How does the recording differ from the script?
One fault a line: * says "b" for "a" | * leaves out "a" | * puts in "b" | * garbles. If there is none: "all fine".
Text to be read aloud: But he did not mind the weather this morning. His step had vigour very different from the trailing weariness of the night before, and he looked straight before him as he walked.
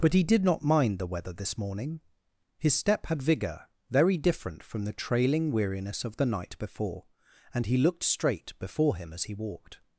all fine